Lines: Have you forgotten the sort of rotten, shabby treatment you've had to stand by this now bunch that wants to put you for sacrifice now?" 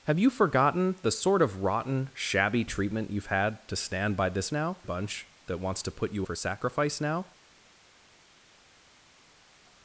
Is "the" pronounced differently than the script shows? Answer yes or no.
no